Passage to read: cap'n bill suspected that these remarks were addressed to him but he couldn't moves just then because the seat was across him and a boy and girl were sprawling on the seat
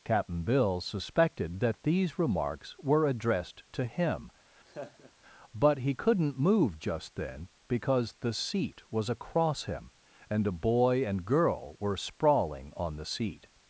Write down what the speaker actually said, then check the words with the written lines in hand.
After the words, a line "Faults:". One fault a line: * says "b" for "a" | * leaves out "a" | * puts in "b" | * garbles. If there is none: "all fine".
cap'n bill suspected that these remarks were addressed to him but he couldn't move just then because the seat was across him and a boy and girl were sprawling on the seat
Faults:
* says "move" for "moves"